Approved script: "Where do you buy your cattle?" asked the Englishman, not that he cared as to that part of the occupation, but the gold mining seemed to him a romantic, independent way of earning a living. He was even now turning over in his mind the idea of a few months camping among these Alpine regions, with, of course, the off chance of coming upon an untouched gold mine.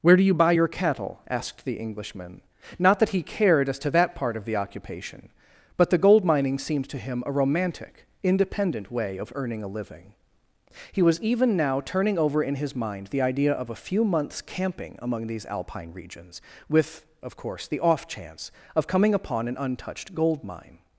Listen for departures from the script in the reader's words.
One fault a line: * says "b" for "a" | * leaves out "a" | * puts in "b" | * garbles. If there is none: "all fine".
all fine